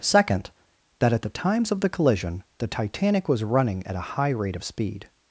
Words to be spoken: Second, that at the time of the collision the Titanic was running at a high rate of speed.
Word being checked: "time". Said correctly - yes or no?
no